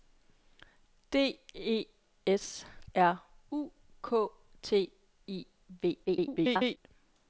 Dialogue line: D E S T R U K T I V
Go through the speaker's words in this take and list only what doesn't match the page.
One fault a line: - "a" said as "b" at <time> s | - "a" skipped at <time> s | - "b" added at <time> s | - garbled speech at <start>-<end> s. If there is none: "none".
- "T" skipped at 2.6 s
- garbled speech at 6.1-6.8 s